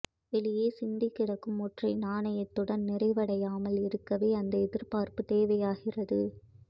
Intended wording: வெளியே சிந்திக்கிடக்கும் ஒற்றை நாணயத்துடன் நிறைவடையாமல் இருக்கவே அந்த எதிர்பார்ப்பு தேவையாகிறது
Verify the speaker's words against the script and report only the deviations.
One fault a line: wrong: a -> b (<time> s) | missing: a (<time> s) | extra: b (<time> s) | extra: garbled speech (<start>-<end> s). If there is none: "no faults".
no faults